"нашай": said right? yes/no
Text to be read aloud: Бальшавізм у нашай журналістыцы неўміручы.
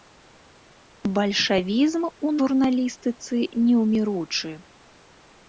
no